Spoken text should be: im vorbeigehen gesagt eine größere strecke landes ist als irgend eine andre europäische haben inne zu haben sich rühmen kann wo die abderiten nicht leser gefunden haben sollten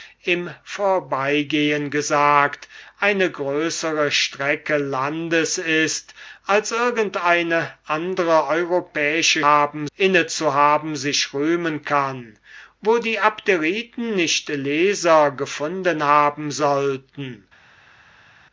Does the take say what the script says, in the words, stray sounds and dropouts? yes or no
yes